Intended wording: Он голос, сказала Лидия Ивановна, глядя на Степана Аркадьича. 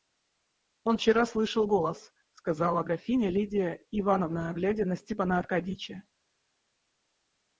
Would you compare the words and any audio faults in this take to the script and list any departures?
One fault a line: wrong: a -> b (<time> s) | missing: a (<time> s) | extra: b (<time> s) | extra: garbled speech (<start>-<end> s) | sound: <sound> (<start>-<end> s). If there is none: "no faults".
extra: вчера слышал (0.9 s)
extra: графиня (2.8 s)